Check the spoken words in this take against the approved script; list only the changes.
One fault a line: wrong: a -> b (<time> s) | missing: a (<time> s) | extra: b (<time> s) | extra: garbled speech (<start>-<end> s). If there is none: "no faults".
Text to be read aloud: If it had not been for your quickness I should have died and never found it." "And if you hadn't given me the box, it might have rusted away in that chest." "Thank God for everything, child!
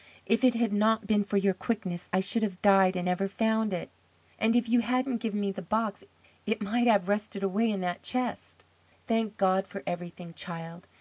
no faults